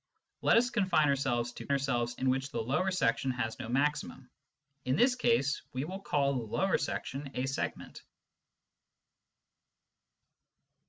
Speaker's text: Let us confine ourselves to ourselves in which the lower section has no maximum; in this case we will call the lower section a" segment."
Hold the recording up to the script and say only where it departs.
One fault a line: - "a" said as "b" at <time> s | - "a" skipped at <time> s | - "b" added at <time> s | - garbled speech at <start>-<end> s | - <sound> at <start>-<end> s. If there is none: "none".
none